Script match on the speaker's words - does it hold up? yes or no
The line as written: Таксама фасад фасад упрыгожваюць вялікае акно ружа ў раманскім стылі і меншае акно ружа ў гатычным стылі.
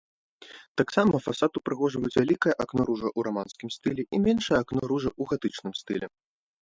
no